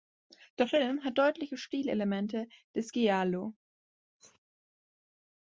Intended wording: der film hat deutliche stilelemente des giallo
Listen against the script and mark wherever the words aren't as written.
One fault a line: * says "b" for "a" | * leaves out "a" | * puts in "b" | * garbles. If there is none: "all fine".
all fine